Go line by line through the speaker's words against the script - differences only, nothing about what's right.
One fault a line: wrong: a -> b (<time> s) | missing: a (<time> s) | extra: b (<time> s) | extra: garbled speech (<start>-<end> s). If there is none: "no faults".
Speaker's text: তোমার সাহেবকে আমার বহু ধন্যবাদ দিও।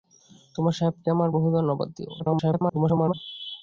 extra: garbled speech (2.2-3.1 s)